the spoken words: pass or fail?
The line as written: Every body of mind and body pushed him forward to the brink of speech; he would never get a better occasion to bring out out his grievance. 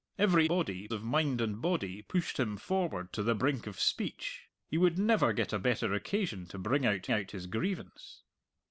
pass